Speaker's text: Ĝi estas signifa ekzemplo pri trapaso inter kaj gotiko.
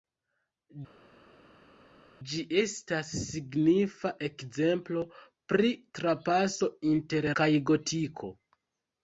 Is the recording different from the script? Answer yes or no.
no